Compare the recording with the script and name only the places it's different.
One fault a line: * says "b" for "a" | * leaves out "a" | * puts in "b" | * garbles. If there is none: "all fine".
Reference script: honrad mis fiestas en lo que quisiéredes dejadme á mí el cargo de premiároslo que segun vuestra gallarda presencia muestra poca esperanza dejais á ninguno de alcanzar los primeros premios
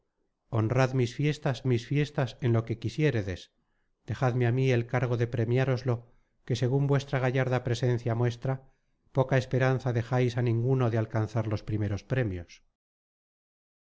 * puts in "mis fiestas"